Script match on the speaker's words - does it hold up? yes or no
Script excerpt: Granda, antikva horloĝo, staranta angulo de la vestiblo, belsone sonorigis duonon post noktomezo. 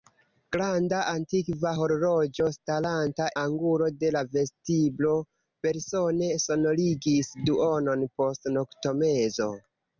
yes